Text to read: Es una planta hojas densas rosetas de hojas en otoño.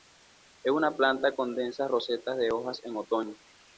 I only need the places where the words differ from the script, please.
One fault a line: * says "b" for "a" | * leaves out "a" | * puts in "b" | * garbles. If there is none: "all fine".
* says "con" for "hojas"